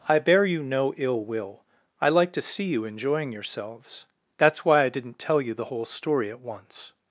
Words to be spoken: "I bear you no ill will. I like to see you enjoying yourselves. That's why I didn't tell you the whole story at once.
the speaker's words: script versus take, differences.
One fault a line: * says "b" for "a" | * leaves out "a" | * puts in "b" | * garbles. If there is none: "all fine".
all fine